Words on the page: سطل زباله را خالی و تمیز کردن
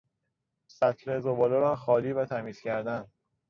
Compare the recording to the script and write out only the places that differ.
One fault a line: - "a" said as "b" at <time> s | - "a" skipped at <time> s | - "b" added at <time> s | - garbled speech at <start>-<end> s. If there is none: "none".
none